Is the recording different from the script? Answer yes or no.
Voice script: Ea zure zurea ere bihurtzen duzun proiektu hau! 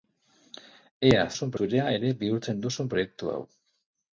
yes